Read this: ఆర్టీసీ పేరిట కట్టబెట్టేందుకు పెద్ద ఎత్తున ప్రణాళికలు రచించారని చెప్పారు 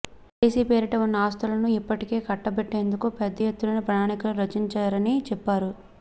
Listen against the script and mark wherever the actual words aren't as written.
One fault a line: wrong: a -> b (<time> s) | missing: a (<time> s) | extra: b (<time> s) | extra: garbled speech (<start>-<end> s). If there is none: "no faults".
extra: ఉన్న ఆస్తులను ఇప్పటికే (1.0 s)